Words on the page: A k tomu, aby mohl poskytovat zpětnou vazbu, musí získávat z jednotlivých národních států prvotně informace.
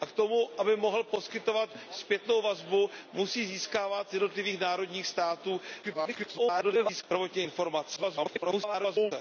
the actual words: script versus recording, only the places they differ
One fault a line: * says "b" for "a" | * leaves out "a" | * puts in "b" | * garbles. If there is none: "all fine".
* garbles
* garbles